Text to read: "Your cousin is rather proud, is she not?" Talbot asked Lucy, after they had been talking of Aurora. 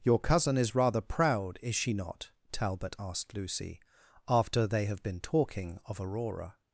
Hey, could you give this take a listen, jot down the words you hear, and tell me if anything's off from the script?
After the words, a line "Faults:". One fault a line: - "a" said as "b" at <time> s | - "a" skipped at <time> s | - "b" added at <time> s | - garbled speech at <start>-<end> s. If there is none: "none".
"Your cousin is rather proud, is she not?" Talbot asked Lucy, after they have been talking of Aurora.
Faults:
- "had" said as "have" at 4.9 s